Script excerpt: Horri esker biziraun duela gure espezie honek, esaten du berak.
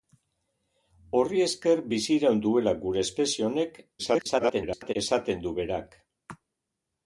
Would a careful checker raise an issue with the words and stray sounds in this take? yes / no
yes